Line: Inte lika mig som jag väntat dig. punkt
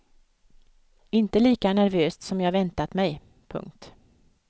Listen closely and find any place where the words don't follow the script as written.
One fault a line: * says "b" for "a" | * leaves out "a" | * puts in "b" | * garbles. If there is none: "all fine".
* says "nervöst" for "mig"
* says "mig" for "dig"